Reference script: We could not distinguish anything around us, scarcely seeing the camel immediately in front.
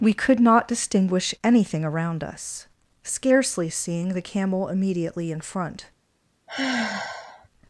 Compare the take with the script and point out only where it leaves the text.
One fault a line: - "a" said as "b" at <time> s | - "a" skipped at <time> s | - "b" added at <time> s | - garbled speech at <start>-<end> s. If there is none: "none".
none